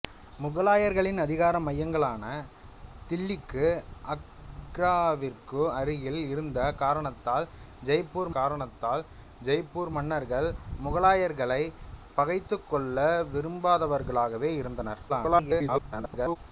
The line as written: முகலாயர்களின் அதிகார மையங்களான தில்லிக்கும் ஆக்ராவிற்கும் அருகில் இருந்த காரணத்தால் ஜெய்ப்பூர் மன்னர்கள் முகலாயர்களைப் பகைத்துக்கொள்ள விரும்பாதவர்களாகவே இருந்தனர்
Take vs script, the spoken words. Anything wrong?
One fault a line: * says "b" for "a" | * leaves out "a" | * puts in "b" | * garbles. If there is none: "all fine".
* puts in "காரணத்தால் ஜெய்ப்பூர்"
* garbles